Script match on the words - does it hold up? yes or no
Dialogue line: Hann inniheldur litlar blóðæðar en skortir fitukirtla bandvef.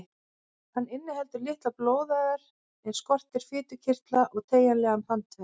no